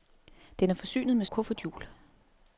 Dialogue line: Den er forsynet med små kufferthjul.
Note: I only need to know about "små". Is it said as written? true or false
false